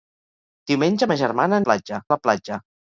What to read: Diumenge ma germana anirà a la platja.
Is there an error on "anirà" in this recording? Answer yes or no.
yes